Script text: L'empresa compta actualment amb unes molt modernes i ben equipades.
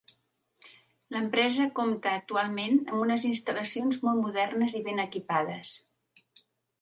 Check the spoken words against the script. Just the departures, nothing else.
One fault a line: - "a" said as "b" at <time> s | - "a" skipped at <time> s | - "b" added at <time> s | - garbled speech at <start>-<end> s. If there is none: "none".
- "instal·lacions" added at 3.3 s